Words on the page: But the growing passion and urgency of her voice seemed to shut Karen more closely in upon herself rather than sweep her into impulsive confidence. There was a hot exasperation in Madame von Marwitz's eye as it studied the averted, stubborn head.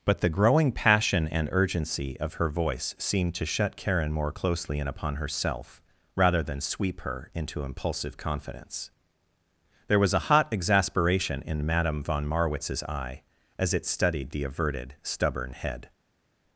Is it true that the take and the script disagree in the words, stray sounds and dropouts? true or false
false